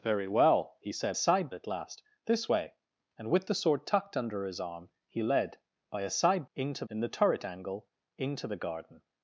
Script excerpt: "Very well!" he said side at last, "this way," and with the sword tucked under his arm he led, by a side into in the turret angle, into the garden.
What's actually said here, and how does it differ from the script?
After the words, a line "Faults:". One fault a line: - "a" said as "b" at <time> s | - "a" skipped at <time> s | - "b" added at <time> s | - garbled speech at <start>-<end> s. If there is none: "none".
"Very well!" he said side at last, "this way," and with the sword tucked under his arm he led, by a side into in the turret angle, into the garden.
Faults:
none